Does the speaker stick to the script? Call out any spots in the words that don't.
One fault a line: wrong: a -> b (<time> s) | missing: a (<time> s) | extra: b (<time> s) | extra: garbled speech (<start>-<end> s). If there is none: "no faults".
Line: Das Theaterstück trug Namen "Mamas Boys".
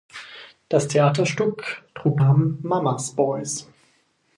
no faults